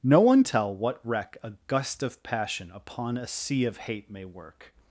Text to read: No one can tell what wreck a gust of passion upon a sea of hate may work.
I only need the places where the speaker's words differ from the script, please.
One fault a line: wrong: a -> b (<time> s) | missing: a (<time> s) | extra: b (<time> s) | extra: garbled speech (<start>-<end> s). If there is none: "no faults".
missing: can (0.4 s)